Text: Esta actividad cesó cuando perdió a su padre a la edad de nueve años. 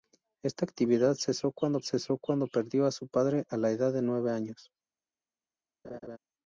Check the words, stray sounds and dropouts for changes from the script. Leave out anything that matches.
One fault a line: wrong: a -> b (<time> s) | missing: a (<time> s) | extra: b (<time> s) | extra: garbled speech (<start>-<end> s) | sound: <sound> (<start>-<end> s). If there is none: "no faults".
extra: cesó cuando (1.8 s)
sound: laugh (5.8-6.2 s)